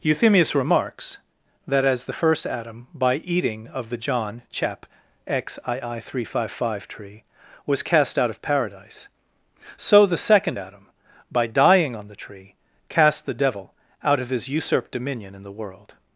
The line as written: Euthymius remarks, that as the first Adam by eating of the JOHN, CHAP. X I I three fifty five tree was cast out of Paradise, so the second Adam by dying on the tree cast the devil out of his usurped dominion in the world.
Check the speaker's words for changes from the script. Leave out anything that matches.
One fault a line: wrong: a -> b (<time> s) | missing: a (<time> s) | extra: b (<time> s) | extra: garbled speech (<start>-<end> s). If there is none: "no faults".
no faults